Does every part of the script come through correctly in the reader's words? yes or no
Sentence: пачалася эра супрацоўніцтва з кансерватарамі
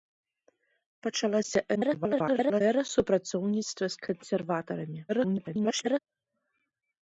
no